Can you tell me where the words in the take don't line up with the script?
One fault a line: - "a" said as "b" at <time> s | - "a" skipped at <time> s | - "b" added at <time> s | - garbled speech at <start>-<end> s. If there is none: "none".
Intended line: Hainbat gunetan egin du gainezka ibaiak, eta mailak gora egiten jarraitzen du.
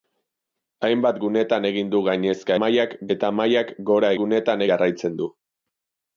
- "ibaiak" said as "mailak" at 2.6 s
- "egiten" said as "gunetan" at 4.2 s